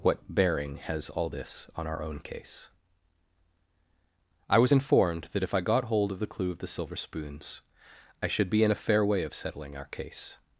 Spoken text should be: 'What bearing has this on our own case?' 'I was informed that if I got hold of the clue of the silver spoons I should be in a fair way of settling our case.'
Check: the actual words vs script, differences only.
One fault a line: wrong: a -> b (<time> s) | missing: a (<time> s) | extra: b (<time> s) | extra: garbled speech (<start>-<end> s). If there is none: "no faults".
extra: all (1.1 s)